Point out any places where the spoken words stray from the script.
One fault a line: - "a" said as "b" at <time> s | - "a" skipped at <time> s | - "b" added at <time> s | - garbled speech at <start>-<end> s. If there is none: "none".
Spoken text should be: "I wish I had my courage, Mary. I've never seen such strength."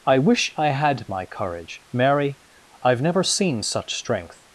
none